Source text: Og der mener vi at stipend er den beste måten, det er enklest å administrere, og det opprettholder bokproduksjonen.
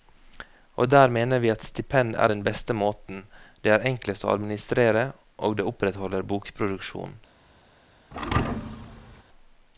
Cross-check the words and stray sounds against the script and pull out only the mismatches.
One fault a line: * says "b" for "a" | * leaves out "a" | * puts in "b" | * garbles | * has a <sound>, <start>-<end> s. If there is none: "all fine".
* has a thud, 8.1-9.2 s